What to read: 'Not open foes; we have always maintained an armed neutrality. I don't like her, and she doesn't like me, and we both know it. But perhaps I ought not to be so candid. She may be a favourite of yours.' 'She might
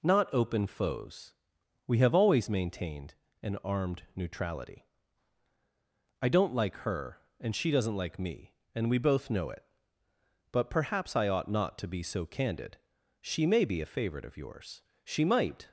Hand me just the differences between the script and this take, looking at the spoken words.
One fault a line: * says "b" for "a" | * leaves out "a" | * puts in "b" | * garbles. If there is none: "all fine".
all fine